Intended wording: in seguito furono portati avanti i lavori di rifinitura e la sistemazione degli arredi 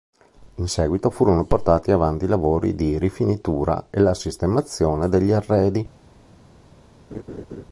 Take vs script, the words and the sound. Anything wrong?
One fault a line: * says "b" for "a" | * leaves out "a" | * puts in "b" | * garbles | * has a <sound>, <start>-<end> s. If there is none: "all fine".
* has a laugh, 7.1-7.6 s